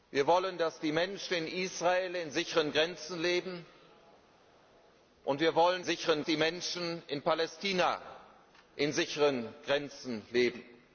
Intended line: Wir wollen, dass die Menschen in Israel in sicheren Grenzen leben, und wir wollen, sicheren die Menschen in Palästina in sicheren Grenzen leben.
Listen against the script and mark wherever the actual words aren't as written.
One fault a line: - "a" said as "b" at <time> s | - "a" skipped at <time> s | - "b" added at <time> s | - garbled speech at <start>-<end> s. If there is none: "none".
none